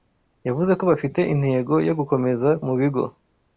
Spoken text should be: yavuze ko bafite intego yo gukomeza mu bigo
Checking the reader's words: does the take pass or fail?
pass